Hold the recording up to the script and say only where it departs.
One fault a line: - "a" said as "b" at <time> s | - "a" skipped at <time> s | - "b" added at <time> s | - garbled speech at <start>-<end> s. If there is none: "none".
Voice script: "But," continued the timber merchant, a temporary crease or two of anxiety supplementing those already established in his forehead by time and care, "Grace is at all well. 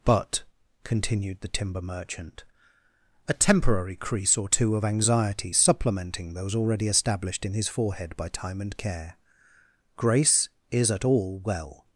none